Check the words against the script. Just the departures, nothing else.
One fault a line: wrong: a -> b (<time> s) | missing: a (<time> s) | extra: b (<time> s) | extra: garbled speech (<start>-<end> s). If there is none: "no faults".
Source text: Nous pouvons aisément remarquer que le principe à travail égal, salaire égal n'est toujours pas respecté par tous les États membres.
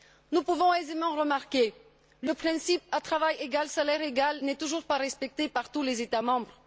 no faults